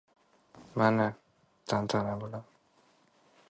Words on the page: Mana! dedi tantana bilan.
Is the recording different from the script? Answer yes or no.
yes